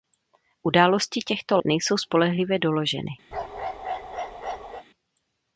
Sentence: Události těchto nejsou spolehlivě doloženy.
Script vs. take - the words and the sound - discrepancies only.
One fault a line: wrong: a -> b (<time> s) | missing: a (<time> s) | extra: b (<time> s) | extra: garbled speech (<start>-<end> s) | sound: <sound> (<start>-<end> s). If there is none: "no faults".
sound: bark (3.3-4.8 s)